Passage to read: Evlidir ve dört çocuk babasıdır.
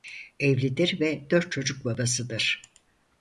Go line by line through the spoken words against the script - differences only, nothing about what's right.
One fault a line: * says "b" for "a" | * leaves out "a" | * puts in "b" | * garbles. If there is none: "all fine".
all fine